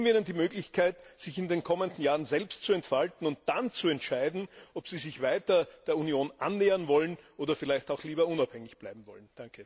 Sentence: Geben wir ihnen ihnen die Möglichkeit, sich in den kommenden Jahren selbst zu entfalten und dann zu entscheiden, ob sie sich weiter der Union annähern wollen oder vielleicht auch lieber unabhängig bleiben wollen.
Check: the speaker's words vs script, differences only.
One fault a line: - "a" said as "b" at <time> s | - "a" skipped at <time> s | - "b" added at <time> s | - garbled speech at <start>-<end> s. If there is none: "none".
- "ihnen" skipped at 0.2 s